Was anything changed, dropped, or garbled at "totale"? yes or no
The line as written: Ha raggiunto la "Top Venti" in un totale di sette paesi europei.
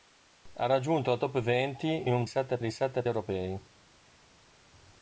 yes